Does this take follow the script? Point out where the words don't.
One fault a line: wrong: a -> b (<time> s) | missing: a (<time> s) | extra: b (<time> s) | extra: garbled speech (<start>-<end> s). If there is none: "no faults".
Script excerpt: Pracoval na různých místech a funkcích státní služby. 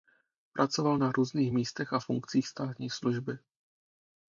no faults